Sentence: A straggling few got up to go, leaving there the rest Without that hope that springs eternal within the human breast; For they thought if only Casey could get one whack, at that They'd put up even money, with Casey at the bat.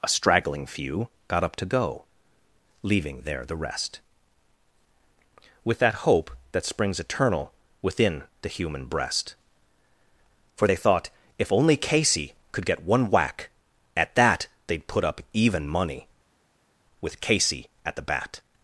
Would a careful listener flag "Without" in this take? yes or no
yes